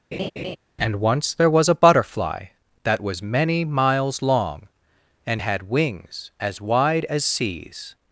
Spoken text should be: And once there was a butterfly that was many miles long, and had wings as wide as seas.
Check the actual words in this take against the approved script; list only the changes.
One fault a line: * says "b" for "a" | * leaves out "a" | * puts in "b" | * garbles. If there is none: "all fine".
all fine